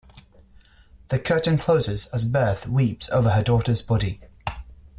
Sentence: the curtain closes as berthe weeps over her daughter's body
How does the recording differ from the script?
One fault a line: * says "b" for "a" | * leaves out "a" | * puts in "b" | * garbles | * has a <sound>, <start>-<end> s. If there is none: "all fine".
all fine